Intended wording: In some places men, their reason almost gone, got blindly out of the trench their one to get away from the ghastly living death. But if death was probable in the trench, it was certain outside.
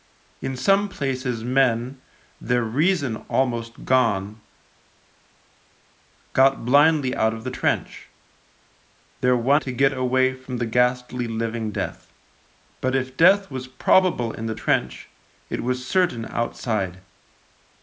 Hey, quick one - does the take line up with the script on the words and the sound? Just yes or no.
yes